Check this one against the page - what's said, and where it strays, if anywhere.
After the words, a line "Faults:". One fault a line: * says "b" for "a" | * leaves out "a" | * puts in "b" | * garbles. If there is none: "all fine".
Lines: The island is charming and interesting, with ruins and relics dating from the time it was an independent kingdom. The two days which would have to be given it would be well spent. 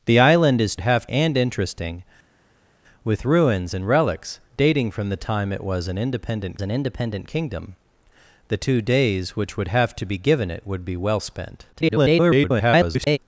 The island is have and interesting, with ruins and relics dating from the time it was an independent an independent kingdom. The two days which would have to be given it would be well spent. [garbled]
Faults:
* says "have" for "charming"
* puts in "an independent"
* garbles